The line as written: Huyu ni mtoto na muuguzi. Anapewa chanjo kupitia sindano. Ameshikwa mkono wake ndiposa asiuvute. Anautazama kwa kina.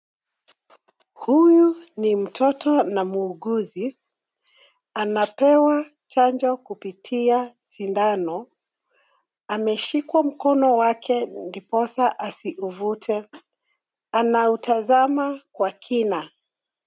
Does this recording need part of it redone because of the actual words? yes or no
no